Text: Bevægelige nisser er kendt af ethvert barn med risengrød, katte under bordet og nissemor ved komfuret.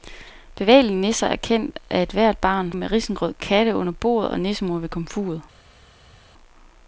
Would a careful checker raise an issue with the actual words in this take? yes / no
no